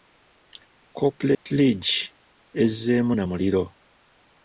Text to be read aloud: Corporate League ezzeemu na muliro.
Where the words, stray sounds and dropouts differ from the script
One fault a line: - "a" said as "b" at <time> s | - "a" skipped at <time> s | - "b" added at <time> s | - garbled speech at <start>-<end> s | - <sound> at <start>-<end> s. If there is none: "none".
- dropout at 1.3-1.5 s